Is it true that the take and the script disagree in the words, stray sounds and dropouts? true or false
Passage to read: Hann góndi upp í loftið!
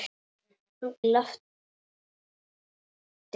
true